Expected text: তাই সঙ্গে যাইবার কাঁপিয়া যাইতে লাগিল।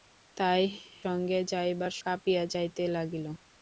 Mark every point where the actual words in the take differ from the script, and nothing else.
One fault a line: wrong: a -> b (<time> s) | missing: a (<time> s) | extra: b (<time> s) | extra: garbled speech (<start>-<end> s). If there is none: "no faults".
no faults